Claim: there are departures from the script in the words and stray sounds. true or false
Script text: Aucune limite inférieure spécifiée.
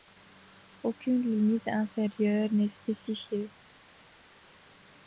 true